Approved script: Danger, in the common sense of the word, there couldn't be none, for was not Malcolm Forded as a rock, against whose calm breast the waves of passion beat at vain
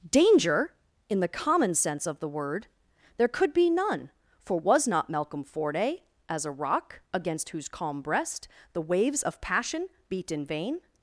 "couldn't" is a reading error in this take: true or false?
true